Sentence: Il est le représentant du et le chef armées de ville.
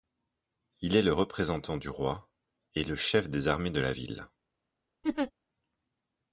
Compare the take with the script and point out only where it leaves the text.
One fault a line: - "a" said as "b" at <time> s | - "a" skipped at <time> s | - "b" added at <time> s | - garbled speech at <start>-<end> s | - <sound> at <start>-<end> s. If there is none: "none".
- "roi" added at 1.9 s
- "des" added at 3.3 s
- "la" added at 3.8 s
- laugh at 5.0-5.3 s